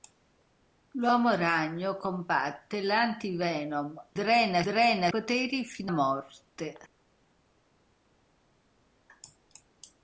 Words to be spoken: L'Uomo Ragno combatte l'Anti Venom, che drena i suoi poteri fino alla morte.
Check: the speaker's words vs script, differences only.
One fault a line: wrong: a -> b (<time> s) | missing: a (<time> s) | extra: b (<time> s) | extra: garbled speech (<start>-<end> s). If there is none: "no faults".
missing: che (4.1 s)
wrong: suoi -> drena (4.6 s)
missing: alla (5.9 s)